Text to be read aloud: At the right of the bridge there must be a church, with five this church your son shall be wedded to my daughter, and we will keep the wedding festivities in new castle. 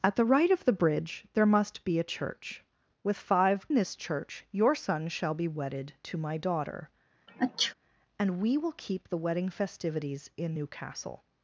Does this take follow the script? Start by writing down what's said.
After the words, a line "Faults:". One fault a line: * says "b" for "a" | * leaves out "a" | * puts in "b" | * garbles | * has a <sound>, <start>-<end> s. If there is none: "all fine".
At the right of the bridge there must be a church, with five this church your son shall be wedded to my daughter, and we will keep the wedding festivities in new castle.
Faults:
* has a sneeze, 7.3-7.7 s